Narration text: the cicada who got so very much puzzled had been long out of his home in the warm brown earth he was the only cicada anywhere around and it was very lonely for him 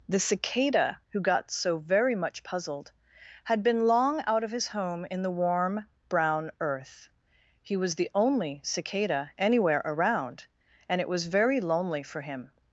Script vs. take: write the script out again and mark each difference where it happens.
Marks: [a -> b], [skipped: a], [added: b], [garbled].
the cicada who got so very much puzzled had been long out of his home in the warm brown earth he was the only cicada anywhere around and it was very lonely for him